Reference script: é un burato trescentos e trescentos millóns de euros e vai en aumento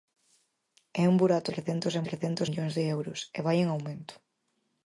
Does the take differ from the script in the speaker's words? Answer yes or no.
no